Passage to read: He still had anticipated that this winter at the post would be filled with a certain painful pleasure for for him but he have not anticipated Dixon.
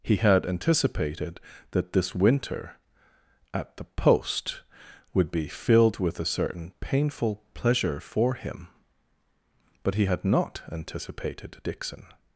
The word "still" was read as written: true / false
false